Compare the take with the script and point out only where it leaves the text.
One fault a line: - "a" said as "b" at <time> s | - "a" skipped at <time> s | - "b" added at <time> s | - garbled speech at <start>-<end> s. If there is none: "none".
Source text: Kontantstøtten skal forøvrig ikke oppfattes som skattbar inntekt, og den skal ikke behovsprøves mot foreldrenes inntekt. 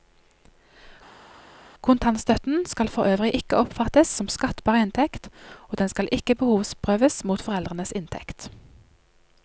none